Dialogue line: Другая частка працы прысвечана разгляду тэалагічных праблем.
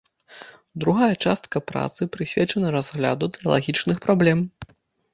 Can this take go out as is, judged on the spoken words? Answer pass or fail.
pass